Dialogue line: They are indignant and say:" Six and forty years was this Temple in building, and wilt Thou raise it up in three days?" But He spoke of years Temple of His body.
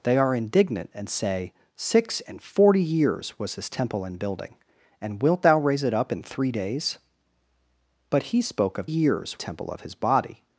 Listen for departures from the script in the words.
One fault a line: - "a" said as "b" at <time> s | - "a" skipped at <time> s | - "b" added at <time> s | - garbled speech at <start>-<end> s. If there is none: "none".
none